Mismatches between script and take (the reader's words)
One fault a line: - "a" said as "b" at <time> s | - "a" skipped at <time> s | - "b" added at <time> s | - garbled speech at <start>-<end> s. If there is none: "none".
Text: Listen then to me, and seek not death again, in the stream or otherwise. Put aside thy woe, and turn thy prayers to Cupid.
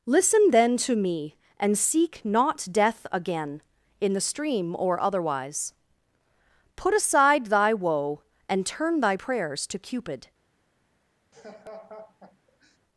none